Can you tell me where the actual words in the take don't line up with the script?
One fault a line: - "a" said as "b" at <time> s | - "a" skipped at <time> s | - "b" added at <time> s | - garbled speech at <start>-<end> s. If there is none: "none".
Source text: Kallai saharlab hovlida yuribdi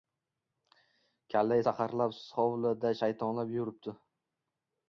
- "shaytonlab" added at 3.0 s